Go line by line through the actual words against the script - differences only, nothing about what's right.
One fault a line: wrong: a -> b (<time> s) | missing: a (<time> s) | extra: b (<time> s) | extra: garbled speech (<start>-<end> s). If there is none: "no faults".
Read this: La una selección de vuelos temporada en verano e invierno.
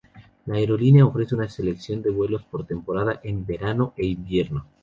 extra: aerolínea ofrece (0.6 s)
extra: por (2.4 s)